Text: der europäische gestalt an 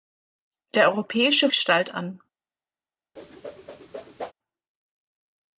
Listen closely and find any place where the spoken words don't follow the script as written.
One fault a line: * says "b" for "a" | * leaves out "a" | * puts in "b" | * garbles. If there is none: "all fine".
all fine